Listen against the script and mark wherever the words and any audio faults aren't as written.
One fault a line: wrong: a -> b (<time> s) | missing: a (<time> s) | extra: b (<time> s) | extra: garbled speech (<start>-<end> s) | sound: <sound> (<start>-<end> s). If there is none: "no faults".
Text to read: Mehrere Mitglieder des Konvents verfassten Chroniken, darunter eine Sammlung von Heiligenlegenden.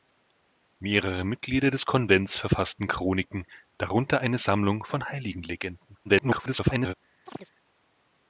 extra: garbled speech (6.0-6.9 s)
sound: chirp (7.3-7.5 s)